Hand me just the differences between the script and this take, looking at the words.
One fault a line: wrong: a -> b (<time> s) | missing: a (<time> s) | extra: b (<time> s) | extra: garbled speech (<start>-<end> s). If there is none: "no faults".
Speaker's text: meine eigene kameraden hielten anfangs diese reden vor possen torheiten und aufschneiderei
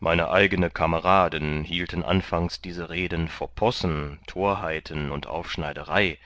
no faults